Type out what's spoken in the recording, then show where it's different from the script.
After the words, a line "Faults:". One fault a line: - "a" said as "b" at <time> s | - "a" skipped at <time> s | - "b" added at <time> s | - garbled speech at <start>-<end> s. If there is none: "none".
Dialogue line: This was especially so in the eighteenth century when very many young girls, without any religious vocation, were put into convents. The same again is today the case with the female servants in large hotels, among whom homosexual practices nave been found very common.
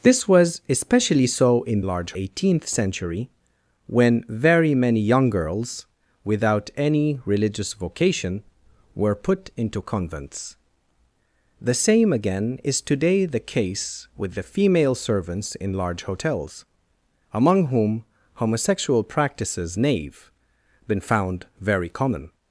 This was especially so in large eighteenth century when very many young girls, without any religious vocation, were put into convents. The same again is today the case with the female servants in large hotels, among whom homosexual practices nave been found very common.
Faults:
- "the" said as "large" at 1.8 s